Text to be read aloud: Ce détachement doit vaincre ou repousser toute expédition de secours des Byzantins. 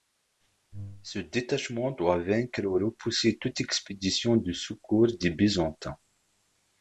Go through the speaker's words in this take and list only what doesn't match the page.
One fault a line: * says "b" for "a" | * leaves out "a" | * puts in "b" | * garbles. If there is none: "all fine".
all fine